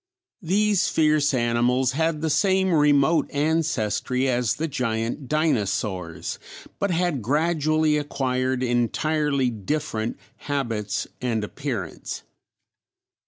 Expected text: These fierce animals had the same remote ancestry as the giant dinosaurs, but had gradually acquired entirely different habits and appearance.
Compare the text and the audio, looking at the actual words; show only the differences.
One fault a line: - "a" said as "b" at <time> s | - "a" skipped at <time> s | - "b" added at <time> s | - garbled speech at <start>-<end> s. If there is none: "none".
none